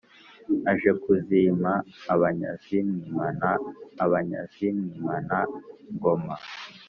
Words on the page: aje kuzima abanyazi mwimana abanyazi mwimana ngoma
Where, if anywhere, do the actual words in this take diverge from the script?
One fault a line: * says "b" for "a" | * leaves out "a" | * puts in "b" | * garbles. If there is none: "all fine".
all fine